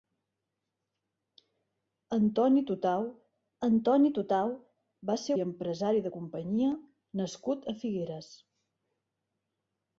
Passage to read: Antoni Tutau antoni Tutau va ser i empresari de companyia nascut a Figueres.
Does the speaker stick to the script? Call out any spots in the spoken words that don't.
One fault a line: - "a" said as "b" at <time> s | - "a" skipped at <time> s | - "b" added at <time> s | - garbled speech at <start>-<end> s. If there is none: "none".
none